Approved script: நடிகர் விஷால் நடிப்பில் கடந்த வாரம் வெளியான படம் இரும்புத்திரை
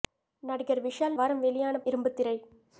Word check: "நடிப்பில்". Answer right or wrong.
wrong